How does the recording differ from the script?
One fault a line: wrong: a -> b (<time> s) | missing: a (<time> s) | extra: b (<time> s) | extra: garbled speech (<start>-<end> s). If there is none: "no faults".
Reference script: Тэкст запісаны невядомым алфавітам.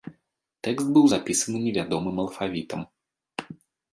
extra: быў (0.9 s)